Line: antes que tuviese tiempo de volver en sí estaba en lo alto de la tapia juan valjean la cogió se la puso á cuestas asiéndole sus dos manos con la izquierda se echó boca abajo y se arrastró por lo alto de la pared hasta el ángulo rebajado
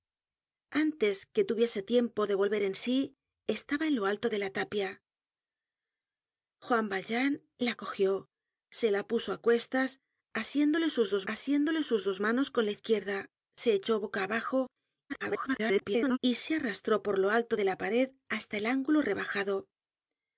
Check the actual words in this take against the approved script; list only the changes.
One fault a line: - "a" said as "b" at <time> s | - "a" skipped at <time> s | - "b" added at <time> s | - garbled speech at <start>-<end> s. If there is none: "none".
- "asiéndole sus dos" added at 11.3 s
- garbled speech at 15.1-16.2 s